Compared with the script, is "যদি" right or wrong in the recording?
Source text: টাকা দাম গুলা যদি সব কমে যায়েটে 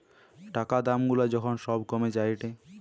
wrong